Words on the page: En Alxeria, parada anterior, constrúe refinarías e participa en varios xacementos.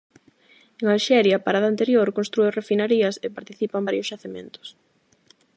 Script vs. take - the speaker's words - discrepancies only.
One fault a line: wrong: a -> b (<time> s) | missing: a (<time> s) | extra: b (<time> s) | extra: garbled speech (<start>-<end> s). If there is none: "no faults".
no faults